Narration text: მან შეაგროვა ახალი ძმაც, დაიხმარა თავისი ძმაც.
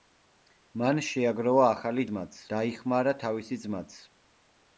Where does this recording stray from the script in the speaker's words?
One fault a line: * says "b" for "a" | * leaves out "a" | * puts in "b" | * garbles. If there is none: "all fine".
all fine